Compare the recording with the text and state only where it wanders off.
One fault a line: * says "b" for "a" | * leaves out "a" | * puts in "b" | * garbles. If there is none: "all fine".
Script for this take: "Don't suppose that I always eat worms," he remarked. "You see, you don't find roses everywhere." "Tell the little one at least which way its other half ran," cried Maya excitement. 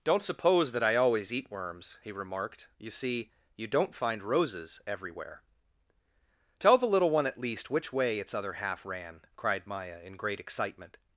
* puts in "in great"